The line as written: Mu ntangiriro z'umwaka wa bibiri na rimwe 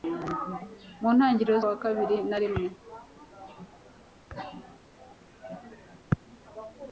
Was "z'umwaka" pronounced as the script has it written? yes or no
no